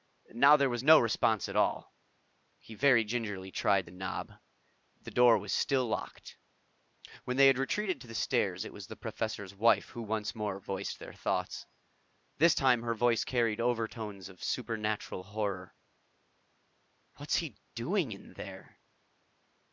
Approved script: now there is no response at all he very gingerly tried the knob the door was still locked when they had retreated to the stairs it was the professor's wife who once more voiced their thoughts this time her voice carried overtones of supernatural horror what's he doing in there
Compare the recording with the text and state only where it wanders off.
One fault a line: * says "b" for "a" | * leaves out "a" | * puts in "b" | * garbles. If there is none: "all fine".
* says "was" for "is"